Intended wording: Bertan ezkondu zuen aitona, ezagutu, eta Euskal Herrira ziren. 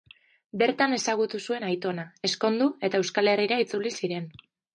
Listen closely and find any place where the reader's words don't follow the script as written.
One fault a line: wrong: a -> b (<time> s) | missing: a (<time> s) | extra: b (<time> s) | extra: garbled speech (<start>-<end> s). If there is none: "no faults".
wrong: ezkondu -> ezagutu (0.9 s)
wrong: ezagutu -> ezkondu (2.3 s)
extra: itzuli (3.7 s)